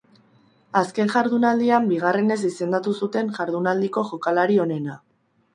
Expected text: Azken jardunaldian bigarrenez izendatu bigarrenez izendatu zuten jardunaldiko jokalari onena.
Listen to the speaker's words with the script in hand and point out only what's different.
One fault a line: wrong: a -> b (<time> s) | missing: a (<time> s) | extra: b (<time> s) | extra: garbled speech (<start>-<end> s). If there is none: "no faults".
missing: bigarrenez izendatu (3.0 s)